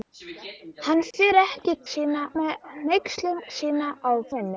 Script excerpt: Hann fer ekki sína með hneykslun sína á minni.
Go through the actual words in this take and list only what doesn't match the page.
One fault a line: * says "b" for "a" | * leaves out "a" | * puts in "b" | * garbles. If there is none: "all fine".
all fine